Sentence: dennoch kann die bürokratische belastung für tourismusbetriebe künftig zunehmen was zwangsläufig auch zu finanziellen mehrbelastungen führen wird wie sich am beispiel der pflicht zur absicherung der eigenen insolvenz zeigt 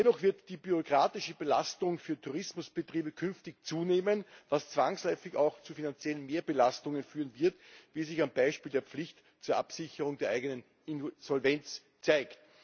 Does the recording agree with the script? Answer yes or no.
no